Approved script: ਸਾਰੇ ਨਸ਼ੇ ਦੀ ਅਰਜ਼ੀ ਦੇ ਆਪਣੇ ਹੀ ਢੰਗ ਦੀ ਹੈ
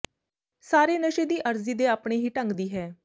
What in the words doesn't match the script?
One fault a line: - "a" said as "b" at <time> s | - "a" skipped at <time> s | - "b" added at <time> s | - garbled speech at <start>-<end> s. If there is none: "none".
none